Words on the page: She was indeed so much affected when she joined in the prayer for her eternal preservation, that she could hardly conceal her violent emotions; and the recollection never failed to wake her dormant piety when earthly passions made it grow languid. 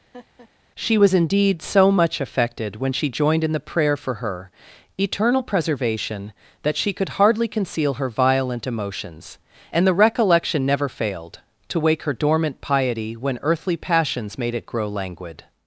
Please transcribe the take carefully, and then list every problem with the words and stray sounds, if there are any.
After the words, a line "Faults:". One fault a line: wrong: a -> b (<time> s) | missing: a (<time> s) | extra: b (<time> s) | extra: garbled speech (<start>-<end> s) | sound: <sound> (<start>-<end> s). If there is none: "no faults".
She was indeed so much affected when she joined in the prayer for her eternal preservation, that she could hardly conceal her violent emotions; and the recollection never failed to wake her dormant piety when earthly passions made it grow languid.
Faults:
sound: laugh (0.1-0.5 s)